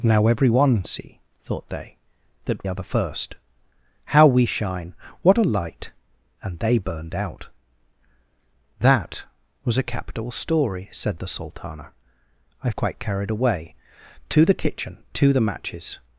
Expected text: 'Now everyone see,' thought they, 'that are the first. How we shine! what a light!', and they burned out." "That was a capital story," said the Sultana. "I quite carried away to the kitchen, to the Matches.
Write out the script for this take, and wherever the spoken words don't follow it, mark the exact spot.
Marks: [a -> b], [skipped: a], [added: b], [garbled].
'Now everyone see,' thought they, 'that are the first. How we shine! what a light!', and they burned out." "That was a capital story," said the Sultana. "I quite carried away to the kitchen, to the Matches.